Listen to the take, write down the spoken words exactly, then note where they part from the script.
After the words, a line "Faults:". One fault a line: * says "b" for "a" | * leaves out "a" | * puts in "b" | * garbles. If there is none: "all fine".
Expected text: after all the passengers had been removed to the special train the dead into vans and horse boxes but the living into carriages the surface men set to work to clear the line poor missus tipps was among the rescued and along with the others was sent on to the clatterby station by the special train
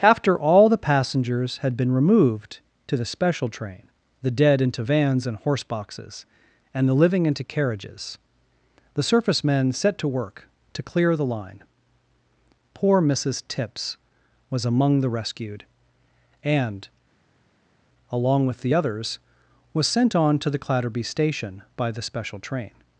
after all the passengers had been removed to the special train the dead into vans and horse boxes and the living into carriages the surface men set to work to clear the line poor missus tipps was among the rescued and along with the others was sent on to the clatterby station by the special train
Faults:
* says "and" for "but"